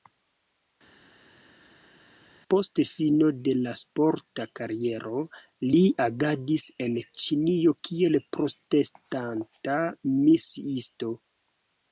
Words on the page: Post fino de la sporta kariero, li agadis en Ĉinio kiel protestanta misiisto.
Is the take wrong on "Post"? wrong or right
right